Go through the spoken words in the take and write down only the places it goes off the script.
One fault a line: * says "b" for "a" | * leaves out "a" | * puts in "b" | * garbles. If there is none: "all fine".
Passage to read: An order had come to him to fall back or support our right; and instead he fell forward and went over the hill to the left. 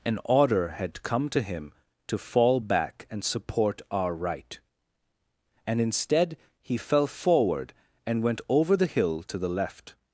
* says "and" for "or"